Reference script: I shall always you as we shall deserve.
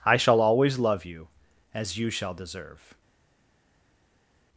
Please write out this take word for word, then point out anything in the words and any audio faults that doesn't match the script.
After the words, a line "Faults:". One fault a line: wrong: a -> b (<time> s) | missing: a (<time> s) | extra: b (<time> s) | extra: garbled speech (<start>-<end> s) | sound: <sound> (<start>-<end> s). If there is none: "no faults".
I shall always love you as you shall deserve.
Faults:
extra: love (0.8 s)
wrong: we -> you (1.9 s)